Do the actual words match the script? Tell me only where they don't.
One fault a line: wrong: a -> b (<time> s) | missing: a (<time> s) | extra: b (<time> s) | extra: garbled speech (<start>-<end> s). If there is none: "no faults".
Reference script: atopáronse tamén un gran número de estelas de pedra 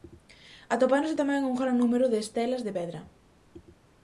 no faults